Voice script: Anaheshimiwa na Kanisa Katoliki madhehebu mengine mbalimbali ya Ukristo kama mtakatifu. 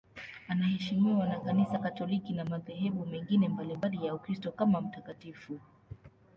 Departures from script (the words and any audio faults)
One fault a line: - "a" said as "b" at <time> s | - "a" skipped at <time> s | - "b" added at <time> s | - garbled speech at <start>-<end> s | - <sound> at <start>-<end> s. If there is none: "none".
- "na" added at 2.3 s